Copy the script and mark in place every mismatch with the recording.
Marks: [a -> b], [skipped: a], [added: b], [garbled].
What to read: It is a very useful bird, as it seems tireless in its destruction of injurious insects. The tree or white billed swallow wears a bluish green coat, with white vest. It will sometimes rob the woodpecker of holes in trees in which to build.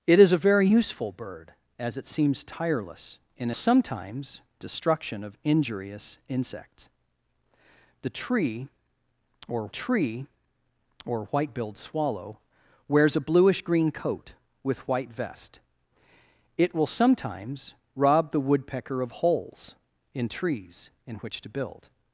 It is a very useful bird, as it seems tireless in [its -> sometimes] destruction of injurious insects. The tree or [added: tree or] white billed swallow wears a bluish green coat, with white vest. It will sometimes rob the woodpecker of holes in trees in which to build.